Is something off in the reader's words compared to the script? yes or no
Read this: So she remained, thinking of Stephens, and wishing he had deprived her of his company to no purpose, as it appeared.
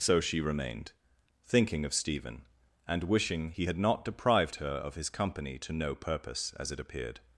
yes